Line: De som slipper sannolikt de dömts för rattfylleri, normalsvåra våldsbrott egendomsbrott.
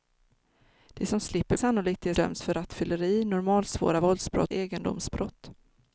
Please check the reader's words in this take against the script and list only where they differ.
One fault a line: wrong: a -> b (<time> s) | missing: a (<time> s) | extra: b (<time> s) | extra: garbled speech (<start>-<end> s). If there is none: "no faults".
no faults